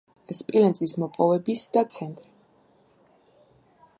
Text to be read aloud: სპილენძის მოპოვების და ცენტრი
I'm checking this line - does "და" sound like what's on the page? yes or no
yes